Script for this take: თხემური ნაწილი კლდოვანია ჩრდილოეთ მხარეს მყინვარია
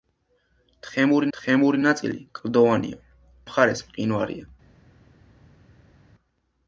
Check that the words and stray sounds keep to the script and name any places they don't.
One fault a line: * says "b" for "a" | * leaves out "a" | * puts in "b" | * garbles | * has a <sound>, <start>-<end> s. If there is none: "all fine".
* puts in "თხემური"
* leaves out "ჩრდილოეთ"